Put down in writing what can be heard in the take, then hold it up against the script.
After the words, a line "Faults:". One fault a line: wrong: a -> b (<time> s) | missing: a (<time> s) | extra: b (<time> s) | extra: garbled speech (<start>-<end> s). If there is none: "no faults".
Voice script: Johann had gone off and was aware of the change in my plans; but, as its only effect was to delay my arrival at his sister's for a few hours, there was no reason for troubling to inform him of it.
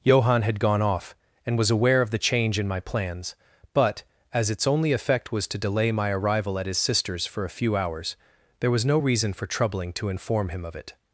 Johann had gone off and was aware of the change in my plans; but, as its only effect was to delay my arrival at his sister's for a few hours, there was no reason for troubling to inform him of it.
Faults:
no faults